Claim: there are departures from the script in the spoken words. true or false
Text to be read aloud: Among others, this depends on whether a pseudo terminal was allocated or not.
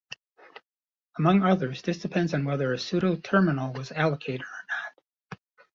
false